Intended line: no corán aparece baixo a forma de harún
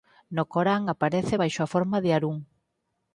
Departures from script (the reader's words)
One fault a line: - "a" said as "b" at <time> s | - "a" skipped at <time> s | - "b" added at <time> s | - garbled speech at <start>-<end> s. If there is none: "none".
none